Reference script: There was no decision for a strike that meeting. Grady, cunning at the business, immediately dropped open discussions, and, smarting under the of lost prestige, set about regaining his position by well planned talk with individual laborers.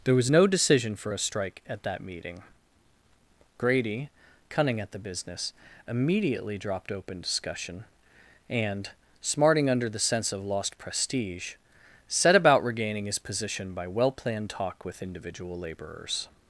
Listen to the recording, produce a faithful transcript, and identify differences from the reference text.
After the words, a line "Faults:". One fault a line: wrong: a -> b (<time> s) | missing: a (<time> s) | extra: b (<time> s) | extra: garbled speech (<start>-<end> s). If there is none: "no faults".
There was no decision for a strike at that meeting. Grady, cunning at the business, immediately dropped open discussion, and, smarting under the sense of lost prestige, set about regaining his position by well planned talk with individual laborers.
Faults:
extra: at (1.7 s)
wrong: discussions -> discussion (7.2 s)
extra: sense (10.0 s)